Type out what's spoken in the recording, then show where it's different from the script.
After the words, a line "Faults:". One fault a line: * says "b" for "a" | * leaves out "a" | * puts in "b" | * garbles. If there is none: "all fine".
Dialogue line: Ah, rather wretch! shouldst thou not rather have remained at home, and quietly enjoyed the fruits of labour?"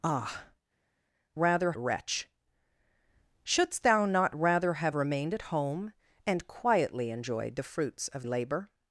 Ah, rather wretch! shouldst thou not rather have remained at home, and quietly enjoyed the fruits of labour?"
Faults:
all fine